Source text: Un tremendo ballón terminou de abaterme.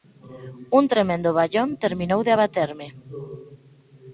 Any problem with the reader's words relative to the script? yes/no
no